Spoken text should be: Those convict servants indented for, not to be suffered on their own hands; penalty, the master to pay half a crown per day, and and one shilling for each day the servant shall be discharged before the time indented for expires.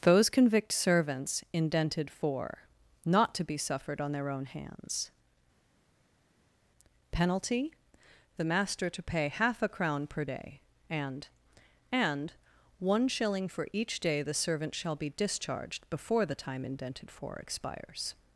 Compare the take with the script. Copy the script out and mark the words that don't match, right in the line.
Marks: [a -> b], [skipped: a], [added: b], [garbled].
Those convict servants indented for, not to be suffered on their own hands; penalty, the master to pay half a crown per day, and and one shilling for each day the servant shall be discharged before the time indented for expires.